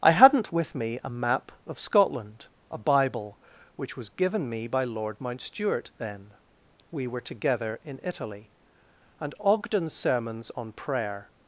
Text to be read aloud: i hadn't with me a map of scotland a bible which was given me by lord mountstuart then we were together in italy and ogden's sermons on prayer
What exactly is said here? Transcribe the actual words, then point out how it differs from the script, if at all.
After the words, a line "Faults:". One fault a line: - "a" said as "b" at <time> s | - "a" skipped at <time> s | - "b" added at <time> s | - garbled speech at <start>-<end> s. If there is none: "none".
i hadn't with me a map of scotland a bible which was given me by lord mountstuart then we were together in italy and ogden's sermons on prayer
Faults:
none